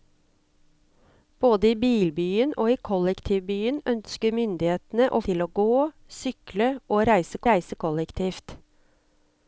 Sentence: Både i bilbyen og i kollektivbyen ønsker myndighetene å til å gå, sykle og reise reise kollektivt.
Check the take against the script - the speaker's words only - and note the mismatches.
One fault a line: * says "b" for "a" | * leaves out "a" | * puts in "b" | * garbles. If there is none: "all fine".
all fine